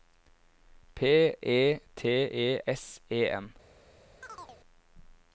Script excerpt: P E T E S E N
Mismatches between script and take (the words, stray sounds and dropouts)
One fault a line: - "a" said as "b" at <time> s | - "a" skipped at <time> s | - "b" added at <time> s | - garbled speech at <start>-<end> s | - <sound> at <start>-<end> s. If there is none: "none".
- chirp at 4.2-4.6 s